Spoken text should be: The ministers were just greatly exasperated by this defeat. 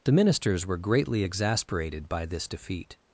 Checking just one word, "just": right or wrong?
wrong